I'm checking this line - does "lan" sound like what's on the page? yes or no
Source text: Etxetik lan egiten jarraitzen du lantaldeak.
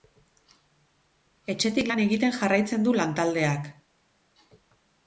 yes